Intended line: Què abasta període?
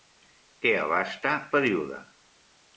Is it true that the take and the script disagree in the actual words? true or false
false